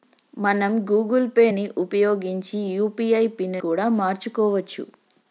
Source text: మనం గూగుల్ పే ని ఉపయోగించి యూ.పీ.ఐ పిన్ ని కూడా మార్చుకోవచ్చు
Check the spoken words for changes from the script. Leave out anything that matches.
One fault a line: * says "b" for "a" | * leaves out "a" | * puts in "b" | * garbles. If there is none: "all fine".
* leaves out "ని"